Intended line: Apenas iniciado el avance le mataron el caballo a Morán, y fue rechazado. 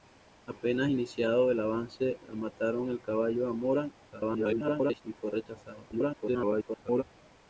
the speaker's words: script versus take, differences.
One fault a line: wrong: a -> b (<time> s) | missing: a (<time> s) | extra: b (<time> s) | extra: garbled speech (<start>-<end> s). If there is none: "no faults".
extra: garbled speech (4.1-5.0 s)
extra: garbled speech (5.9-7.0 s)